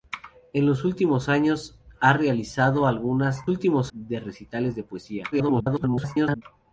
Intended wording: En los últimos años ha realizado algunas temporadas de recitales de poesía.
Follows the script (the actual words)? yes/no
no